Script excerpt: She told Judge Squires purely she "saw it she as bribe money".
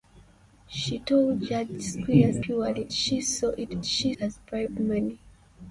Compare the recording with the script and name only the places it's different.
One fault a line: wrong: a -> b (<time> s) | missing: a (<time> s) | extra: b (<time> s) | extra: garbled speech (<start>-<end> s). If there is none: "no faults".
no faults